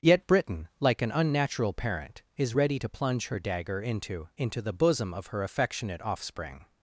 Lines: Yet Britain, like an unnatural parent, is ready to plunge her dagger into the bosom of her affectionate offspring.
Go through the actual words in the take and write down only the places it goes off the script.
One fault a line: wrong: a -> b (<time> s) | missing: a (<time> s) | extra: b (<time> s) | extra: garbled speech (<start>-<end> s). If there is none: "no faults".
extra: into (4.4 s)